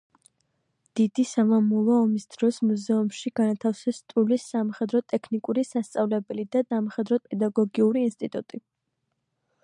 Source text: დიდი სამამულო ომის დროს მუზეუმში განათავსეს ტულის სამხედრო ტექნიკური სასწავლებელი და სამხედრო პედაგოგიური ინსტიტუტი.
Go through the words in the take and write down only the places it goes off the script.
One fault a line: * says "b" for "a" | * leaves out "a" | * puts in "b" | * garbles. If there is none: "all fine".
all fine